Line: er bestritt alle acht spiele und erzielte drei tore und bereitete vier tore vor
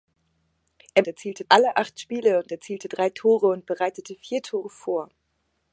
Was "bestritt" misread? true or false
true